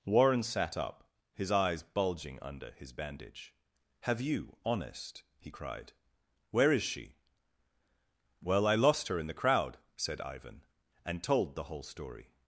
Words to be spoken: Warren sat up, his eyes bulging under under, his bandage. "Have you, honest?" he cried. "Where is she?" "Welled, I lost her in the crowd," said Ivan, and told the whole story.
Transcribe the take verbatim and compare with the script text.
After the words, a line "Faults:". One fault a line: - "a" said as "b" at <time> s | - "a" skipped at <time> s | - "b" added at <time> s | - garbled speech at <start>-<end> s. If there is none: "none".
Warren sat up, his eyes bulging under, his bandage. "Have you, honest?" he cried. "Where is she?" "Well, I lost her in the crowd," said Ivan, and told the whole story.
Faults:
- "under" skipped at 2.7 s
- "Welled" said as "Well" at 8.4 s